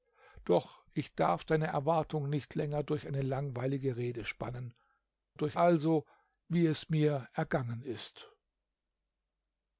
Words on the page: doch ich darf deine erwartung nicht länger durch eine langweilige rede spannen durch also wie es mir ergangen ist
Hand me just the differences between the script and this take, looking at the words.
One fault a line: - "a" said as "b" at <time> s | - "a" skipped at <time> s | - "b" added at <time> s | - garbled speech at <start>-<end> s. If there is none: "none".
none